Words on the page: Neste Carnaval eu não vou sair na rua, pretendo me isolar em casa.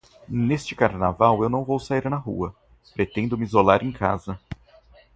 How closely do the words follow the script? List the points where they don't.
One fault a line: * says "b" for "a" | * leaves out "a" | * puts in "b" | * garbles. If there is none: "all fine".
all fine